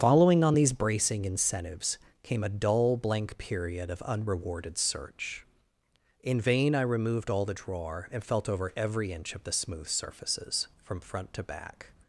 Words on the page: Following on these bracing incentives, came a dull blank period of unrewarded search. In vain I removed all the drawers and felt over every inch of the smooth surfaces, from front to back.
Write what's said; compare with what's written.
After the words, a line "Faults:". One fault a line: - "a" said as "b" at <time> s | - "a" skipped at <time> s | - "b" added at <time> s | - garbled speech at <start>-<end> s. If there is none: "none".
Following on these bracing incentives, came a dull blank period of unrewarded search. In vain I removed all the drawer and felt over every inch of the smooth surfaces, from front to back.
Faults:
- "drawers" said as "drawer" at 7.5 s